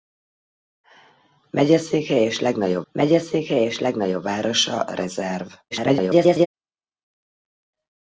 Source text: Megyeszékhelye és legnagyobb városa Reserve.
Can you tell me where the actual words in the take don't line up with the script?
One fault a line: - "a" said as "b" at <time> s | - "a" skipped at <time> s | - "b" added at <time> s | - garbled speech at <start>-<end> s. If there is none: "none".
- "megyeszékhelye és legnagyobb" added at 2.9 s
- garbled speech at 5.7-6.5 s